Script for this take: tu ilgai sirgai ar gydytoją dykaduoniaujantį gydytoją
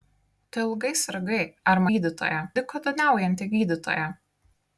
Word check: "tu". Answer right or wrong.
right